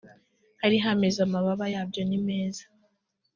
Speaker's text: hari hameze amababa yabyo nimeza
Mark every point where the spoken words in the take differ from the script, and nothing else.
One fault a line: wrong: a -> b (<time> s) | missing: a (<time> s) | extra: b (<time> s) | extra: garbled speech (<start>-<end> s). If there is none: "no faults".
no faults